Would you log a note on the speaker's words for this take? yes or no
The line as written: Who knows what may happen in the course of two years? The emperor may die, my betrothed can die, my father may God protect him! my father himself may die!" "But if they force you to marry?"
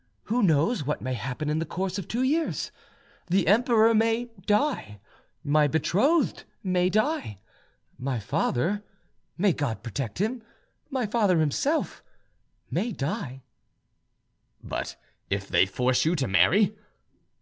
yes